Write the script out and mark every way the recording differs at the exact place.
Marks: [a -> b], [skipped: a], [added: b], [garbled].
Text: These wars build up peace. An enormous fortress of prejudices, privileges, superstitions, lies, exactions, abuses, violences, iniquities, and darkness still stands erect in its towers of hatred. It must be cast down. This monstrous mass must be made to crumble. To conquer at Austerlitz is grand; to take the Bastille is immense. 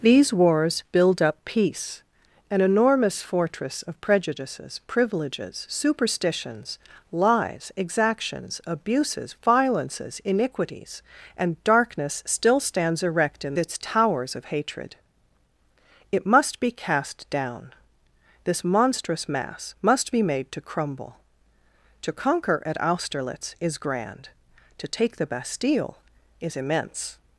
These wars build up peace. An enormous fortress of prejudices, privileges, superstitions, lies, exactions, abuses, violences, iniquities, and darkness still stands erect in its towers of hatred. It must be cast down. This monstrous mass must be made to crumble. To conquer at Austerlitz is grand; to take the Bastille is immense.